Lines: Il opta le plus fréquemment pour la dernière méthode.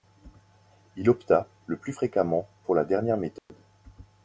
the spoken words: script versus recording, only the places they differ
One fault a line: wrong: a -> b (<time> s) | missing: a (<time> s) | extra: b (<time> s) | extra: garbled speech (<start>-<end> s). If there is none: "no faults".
no faults